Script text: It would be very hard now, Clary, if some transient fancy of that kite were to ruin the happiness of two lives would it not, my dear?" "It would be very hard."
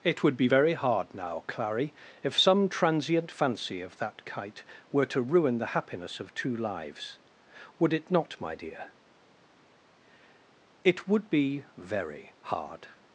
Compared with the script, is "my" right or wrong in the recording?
right